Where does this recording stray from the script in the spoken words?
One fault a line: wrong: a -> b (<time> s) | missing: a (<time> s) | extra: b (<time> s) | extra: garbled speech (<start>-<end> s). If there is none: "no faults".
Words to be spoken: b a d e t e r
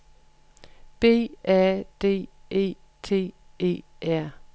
no faults